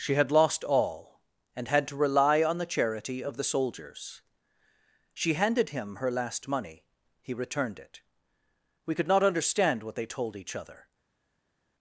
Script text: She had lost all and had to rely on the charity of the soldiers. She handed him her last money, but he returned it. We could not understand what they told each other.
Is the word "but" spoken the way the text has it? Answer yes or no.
no